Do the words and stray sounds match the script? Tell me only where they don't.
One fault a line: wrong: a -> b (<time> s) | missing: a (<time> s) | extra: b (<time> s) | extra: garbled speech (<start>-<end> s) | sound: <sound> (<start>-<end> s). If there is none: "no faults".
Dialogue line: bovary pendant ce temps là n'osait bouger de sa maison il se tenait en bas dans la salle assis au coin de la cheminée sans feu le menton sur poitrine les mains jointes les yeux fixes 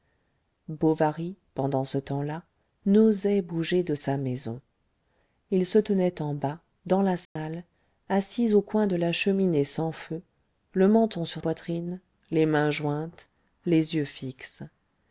sound: dropout (7.3-7.4 s)